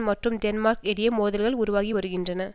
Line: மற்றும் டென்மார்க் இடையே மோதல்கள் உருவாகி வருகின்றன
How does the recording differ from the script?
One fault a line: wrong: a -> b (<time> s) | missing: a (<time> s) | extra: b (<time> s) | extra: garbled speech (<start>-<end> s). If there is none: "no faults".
no faults